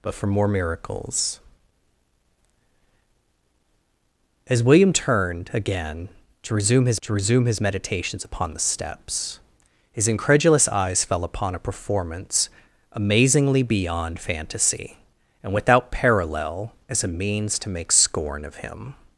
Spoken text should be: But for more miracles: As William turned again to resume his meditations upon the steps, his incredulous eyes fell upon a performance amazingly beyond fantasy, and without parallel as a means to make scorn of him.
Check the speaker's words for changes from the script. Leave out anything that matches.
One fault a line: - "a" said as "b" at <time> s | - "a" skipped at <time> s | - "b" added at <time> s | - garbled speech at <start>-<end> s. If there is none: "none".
- "to resume his" added at 7.0 s